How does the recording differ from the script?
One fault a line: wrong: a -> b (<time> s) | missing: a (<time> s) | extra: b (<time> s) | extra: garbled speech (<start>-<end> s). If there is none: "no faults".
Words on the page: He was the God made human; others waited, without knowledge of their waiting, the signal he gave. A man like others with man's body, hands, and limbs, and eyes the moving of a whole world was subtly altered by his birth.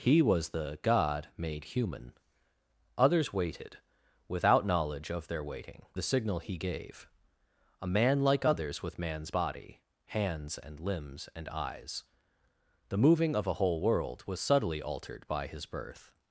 no faults